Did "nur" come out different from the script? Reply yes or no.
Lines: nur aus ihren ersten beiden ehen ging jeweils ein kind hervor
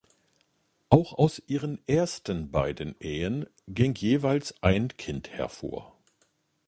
yes